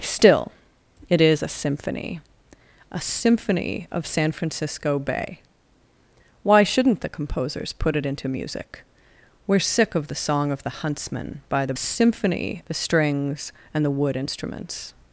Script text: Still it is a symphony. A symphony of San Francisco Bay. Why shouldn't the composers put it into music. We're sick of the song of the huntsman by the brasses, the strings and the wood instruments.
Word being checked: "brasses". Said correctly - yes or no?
no